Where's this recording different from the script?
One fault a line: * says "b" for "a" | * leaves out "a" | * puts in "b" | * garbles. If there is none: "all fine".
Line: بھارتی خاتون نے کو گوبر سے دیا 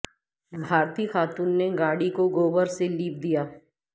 * puts in "گاڑی"
* puts in "لیپ"